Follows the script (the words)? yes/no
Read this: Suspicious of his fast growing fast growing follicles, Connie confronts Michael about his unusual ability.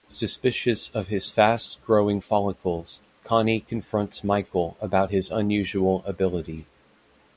no